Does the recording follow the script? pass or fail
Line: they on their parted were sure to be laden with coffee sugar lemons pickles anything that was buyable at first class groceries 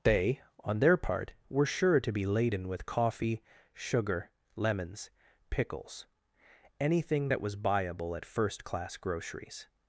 fail